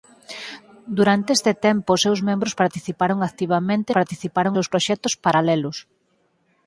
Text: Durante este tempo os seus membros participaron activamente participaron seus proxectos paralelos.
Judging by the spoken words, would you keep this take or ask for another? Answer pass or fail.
pass